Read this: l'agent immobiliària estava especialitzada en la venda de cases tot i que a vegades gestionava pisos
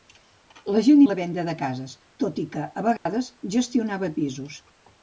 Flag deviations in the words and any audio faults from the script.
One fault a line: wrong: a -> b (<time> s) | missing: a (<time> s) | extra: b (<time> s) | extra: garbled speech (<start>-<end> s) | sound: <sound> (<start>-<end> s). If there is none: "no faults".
missing: immobiliària estava especialitzada (1.0 s)
sound: dropout (3.0-3.1 s)